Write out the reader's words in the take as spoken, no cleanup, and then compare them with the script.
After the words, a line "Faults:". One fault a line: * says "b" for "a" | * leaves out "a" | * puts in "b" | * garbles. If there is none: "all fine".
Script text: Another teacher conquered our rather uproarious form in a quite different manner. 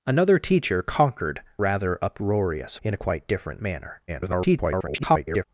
Another teacher conquered rather uproarious in a quite different manner. [garbled]
Faults:
* leaves out "our"
* leaves out "form"
* garbles